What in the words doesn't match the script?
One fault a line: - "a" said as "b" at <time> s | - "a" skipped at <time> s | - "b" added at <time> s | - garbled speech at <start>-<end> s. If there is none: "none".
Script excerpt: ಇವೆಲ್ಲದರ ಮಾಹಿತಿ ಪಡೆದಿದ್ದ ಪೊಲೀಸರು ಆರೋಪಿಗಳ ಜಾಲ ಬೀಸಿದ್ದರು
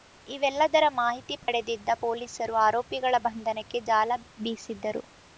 - "ಬಂಧನಕ್ಕೆ" added at 3.3 s